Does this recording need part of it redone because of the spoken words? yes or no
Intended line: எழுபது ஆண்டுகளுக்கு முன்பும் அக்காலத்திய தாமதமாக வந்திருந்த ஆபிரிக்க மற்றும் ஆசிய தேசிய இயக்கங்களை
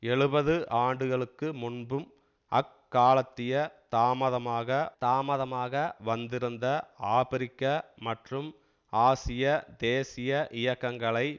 yes